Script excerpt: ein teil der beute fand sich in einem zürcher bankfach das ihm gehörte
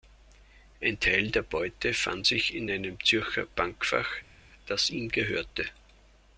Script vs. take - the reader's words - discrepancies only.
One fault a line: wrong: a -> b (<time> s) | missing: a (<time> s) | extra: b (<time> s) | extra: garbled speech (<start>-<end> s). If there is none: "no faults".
no faults